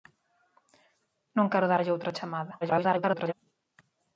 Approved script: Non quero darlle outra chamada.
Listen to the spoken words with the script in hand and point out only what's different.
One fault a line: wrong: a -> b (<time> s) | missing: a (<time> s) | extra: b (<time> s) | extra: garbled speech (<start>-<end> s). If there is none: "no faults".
extra: garbled speech (2.6-3.3 s)